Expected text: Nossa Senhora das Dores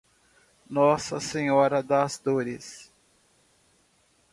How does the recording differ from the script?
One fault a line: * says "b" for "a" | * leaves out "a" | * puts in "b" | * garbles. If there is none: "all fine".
all fine